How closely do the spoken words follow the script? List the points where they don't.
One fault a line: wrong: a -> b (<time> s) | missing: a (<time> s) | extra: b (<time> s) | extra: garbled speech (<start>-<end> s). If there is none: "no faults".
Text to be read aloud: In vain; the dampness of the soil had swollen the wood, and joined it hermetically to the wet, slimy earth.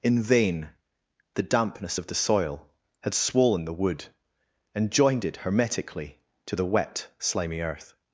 no faults